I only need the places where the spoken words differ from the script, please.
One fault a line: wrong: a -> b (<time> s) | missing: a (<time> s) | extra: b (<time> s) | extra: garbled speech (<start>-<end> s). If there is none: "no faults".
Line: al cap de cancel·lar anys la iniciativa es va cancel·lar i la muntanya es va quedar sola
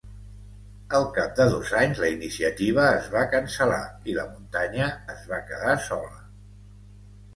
wrong: cancel·lar -> dos (1.6 s)